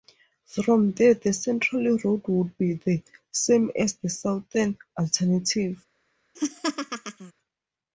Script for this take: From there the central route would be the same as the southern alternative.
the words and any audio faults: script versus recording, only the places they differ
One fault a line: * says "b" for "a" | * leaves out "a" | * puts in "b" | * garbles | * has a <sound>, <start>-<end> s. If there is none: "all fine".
* has a laugh, 6.3-7.3 s